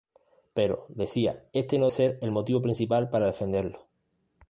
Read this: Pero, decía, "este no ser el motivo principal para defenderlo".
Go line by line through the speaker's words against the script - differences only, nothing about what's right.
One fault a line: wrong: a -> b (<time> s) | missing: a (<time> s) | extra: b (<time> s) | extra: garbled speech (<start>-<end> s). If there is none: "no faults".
no faults